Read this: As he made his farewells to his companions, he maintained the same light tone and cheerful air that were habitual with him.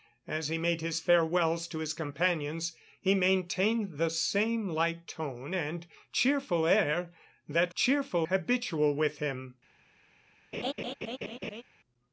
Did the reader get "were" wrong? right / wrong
wrong